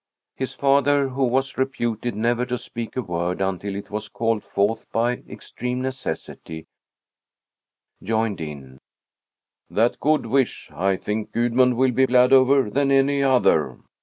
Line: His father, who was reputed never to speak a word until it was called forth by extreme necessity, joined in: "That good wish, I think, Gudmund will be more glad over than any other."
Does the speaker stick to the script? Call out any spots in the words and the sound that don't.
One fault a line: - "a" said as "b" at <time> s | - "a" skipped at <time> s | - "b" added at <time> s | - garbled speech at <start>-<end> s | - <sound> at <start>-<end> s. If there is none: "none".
- "more" skipped at 12.0 s